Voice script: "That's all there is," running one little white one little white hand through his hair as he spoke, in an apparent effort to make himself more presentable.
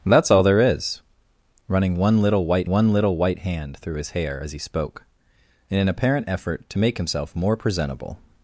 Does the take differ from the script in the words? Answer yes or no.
no